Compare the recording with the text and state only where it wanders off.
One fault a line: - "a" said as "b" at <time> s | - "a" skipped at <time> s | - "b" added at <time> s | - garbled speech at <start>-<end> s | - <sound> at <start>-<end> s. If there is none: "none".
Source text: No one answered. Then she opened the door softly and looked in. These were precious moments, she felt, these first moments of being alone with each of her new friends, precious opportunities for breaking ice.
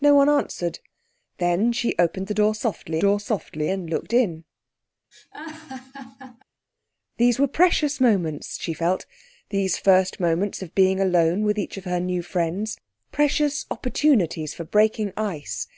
- "door softly" added at 3.0 s
- laugh at 5.1-6.4 s